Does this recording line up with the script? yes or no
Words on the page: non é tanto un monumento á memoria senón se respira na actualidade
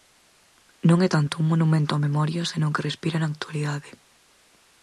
no